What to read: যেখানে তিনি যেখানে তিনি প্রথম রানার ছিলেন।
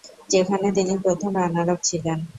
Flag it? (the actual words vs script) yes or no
yes